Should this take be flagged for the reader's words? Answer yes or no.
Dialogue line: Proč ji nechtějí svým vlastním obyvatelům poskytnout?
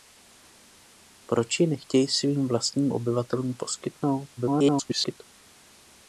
yes